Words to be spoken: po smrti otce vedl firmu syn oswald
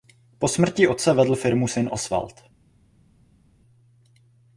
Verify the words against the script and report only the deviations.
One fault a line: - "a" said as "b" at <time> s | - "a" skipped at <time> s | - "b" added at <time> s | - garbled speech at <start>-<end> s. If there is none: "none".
none